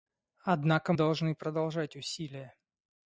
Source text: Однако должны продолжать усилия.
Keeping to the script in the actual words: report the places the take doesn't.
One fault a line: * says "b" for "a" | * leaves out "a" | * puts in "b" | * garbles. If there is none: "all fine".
all fine